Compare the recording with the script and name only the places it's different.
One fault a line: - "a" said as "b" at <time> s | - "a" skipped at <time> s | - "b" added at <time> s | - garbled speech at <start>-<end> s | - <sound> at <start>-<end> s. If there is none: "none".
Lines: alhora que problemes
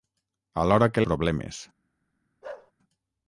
- bark at 2.4-2.7 s